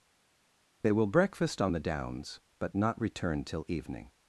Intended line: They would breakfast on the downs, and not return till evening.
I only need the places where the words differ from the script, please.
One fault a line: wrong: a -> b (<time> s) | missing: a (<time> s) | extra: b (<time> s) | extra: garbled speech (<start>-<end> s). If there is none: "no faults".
wrong: would -> will (0.9 s)
wrong: and -> but (2.6 s)